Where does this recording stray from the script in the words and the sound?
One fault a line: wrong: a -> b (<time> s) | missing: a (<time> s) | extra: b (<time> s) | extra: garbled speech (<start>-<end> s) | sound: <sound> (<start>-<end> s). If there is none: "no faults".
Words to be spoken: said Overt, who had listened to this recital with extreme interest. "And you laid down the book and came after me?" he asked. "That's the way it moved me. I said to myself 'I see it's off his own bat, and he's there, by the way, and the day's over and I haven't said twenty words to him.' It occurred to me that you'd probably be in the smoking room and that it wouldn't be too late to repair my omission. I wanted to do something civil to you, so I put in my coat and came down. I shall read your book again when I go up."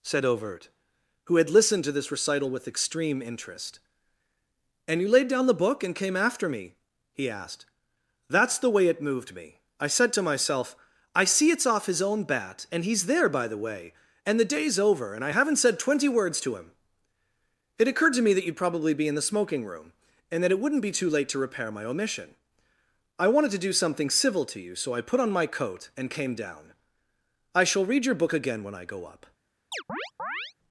wrong: in -> on (25.2 s)
sound: chirp (29.7-30.5 s)